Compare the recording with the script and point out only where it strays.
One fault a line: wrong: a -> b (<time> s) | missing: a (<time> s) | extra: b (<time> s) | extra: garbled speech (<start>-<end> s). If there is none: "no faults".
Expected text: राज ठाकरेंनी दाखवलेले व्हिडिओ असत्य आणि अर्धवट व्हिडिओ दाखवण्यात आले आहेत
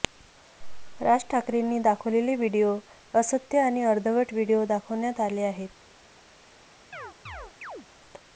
no faults